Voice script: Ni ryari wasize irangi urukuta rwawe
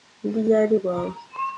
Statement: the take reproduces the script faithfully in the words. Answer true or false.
false